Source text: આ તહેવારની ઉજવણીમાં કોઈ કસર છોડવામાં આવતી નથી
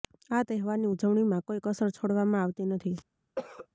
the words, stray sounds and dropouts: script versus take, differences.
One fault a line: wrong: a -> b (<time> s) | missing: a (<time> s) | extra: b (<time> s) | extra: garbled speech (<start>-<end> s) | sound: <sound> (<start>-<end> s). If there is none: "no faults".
sound: cough (3.4-3.7 s)